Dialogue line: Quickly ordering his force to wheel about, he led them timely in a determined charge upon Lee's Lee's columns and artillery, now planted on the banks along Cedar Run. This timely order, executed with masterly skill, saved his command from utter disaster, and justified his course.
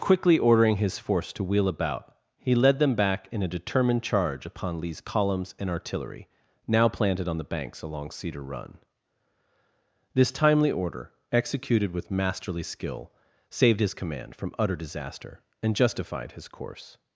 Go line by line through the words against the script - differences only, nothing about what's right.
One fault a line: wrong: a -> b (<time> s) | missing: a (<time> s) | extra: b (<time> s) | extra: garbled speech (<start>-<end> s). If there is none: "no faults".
wrong: timely -> back (3.0 s)
missing: Lee's (5.0 s)